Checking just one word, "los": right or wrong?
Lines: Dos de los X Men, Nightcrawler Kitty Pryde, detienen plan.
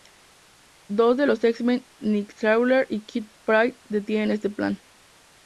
right